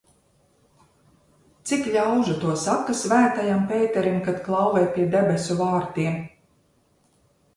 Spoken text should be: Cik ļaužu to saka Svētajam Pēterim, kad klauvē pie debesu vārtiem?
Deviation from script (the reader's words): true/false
false